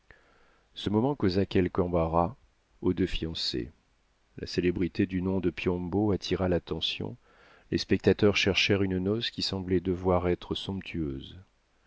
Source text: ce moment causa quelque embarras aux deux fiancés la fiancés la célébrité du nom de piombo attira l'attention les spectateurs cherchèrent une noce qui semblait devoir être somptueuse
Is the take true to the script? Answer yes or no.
no